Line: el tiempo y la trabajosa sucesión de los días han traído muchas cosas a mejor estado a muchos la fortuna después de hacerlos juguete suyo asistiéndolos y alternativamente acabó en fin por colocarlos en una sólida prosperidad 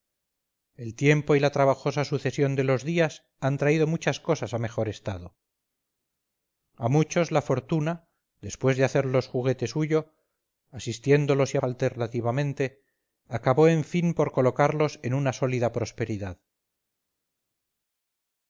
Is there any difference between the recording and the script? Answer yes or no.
no